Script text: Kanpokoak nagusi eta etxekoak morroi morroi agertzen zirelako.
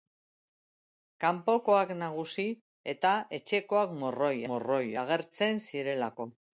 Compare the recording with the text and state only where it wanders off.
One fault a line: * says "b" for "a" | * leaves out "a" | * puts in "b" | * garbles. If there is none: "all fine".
all fine